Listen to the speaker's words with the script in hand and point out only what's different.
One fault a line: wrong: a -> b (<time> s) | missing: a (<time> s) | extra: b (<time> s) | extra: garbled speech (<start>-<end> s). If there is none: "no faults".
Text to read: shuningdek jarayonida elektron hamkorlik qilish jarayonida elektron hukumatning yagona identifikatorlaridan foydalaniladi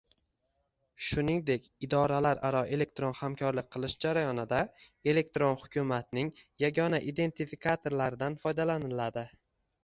wrong: jarayonida -> idoralararo (1.9 s)